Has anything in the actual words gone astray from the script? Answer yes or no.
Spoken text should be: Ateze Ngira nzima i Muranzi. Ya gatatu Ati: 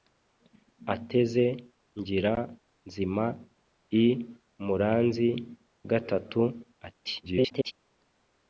yes